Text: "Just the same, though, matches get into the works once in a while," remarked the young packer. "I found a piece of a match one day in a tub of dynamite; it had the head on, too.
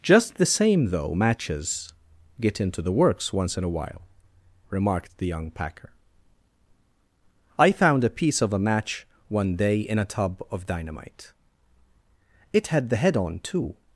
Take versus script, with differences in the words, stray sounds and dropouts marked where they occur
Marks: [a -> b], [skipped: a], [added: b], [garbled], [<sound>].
"Just the same, though, matches get into the works once in a while," remarked the young packer. "I found a piece of a match one day in a tub of dynamite; it had the head on, too.